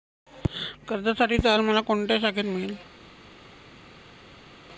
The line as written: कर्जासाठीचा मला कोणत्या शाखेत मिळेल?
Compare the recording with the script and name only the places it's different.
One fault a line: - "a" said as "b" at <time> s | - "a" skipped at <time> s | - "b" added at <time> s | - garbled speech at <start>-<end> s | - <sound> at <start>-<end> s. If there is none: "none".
none